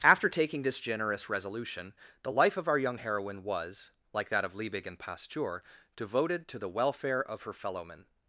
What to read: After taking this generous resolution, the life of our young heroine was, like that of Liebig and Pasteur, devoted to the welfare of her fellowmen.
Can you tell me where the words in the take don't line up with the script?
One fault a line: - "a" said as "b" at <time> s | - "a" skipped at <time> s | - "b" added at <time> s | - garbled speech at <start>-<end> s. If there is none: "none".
none